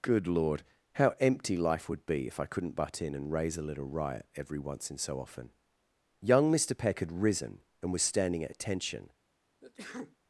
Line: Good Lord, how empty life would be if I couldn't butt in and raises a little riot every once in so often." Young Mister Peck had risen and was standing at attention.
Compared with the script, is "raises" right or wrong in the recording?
wrong